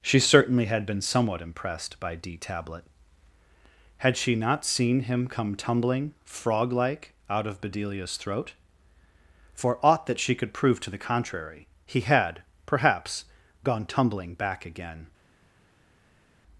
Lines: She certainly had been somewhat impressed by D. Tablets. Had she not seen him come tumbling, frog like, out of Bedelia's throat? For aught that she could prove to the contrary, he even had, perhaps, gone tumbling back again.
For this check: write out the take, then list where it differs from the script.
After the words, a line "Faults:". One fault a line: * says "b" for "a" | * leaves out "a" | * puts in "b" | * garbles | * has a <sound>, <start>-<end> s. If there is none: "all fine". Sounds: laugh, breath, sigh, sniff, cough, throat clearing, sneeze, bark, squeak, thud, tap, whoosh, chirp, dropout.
She certainly had been somewhat impressed by D. Tablet. Had she not seen him come tumbling, frog like, out of Bedelia's throat? For aught that she could prove to the contrary, he had, perhaps, gone tumbling back again.
Faults:
* says "Tablet" for "Tablets"
* leaves out "even"